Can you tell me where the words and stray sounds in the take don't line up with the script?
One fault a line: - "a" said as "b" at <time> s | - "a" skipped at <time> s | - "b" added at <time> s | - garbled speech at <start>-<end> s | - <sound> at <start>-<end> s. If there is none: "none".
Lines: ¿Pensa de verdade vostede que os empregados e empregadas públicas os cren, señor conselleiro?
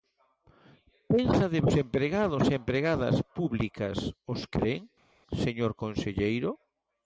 - "verdade vostede que" skipped at 1.6 s